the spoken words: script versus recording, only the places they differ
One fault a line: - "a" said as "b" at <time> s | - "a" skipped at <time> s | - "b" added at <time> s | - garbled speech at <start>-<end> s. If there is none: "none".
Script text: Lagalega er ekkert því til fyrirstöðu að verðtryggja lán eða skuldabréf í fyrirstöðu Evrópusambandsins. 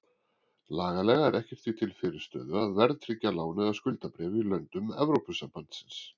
- "fyrirstöðu" said as "löndum" at 4.5 s